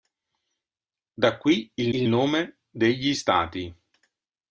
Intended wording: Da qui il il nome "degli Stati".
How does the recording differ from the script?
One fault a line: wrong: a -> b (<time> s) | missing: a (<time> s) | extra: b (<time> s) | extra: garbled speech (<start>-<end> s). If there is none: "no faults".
no faults